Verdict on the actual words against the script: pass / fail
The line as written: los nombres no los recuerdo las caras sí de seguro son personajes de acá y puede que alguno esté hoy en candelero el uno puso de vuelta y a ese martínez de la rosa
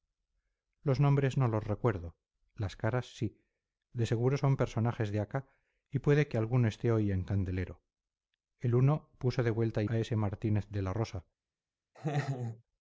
pass